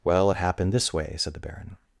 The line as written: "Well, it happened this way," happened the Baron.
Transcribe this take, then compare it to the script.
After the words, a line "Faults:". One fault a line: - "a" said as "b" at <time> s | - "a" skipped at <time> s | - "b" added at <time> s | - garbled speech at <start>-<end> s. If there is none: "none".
"Well, it happened this way," said the Baron.
Faults:
- "happened" said as "said" at 1.2 s